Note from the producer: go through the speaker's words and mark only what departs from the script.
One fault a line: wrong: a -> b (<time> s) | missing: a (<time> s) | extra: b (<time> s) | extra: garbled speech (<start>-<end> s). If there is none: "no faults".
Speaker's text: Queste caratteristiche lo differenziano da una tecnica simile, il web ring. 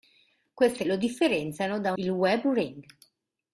missing: caratteristiche (0.8 s)
missing: una tecnica simile (1.9 s)